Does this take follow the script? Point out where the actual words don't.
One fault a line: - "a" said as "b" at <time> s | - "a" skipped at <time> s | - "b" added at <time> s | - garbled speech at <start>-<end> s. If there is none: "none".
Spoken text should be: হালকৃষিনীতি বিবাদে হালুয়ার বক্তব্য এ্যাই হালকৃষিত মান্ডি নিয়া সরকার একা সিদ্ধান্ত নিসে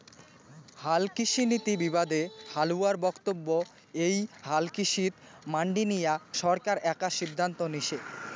none